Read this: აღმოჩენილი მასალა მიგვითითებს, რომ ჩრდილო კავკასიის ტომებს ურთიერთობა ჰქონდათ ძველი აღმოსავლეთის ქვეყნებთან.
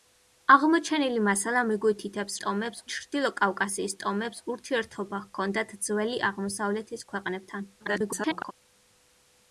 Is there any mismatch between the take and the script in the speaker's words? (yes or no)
yes